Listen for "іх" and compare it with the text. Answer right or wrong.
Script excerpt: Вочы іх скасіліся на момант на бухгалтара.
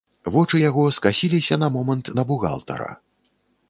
wrong